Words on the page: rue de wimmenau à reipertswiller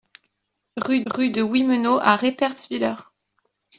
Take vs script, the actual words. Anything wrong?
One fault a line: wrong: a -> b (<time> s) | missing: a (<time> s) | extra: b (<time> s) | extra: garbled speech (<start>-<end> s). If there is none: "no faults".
extra: rue (1.1 s)